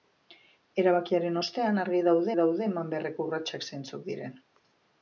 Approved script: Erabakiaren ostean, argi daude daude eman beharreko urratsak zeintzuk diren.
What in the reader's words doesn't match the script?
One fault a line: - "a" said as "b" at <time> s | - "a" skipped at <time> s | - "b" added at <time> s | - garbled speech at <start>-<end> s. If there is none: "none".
none